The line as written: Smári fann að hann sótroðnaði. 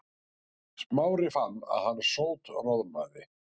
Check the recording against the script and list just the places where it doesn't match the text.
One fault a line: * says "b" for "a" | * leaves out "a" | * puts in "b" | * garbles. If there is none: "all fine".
all fine